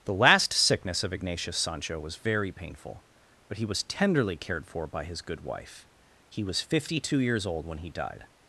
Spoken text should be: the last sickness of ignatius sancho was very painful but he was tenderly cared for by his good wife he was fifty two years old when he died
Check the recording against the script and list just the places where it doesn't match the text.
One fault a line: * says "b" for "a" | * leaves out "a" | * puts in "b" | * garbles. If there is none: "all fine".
all fine